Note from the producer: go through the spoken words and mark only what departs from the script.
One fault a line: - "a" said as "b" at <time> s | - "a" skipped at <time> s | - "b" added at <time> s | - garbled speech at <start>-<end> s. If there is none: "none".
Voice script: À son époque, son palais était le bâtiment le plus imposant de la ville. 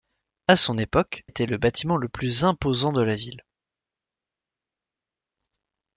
- "son palais" skipped at 1.2 s